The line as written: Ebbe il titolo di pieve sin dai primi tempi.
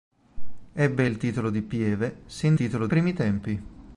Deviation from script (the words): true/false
true